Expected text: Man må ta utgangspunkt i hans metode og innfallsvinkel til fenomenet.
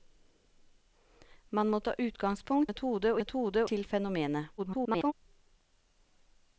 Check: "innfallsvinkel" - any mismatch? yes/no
yes